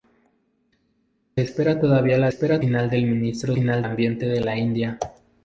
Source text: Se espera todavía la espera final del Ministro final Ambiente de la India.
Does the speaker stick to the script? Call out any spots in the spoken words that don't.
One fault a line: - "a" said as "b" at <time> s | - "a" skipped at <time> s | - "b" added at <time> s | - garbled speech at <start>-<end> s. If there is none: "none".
none